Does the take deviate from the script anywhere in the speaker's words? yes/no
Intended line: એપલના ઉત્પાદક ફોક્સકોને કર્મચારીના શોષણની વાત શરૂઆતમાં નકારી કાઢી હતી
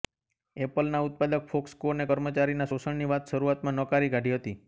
no